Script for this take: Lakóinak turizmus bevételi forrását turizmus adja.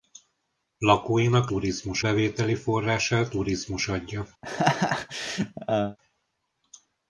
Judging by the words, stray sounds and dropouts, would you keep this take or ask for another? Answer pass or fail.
fail